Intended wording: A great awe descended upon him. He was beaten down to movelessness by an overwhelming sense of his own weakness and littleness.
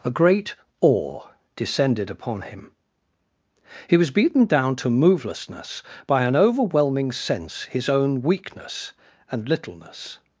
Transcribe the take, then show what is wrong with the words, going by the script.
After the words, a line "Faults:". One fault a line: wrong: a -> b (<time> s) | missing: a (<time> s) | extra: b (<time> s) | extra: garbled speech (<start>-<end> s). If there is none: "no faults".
A great awe descended upon him. He was beaten down to movelessness by an overwhelming sense his own weakness and littleness.
Faults:
missing: of (7.6 s)